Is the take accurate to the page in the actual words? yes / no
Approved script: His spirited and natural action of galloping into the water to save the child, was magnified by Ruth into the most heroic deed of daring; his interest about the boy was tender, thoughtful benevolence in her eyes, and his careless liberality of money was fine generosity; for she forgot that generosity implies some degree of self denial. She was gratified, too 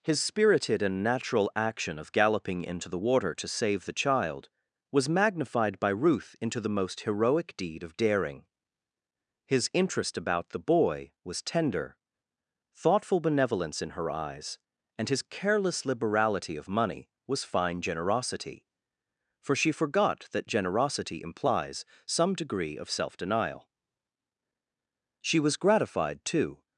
yes